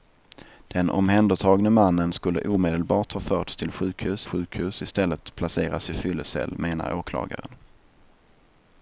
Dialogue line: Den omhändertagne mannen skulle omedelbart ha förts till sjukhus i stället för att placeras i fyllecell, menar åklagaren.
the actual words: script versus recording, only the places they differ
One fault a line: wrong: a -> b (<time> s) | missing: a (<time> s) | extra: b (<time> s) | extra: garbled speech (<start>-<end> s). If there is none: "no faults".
extra: sjukhus (4.2 s)
missing: för (5.2 s)